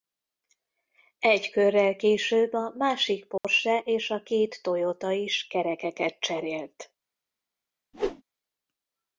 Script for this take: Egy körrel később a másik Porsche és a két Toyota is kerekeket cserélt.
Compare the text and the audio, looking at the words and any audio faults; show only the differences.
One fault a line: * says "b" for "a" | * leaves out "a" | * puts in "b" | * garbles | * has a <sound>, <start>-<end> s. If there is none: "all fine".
* has a dropout, 3.4-3.4 s
* has a whoosh, 7.9-8.2 s